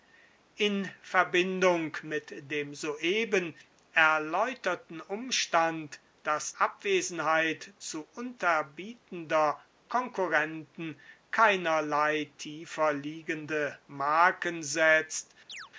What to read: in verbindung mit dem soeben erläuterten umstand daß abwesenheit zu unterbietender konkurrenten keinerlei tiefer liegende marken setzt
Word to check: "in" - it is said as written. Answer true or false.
true